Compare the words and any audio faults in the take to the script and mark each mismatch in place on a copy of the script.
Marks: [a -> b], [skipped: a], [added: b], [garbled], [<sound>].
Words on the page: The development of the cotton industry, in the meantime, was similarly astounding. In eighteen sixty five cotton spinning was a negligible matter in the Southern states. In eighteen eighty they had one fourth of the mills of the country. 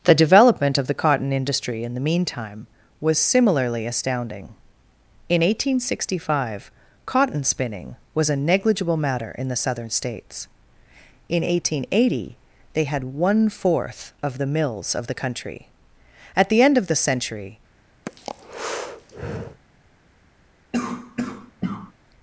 The development of the cotton industry, in the meantime, was similarly astounding. In eighteen sixty five cotton spinning was a negligible matter in the Southern states. In eighteen eighty they had one fourth of the mills of the country. [added: At the end of the century] [breath] [cough]